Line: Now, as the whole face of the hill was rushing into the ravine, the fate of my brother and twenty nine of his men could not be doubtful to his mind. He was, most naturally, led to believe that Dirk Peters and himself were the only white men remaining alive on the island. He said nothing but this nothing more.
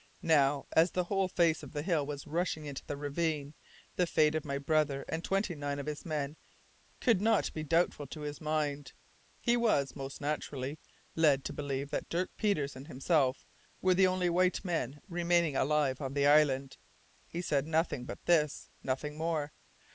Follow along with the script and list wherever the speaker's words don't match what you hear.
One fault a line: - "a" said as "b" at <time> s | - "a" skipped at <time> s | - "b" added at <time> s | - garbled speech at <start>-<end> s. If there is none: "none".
none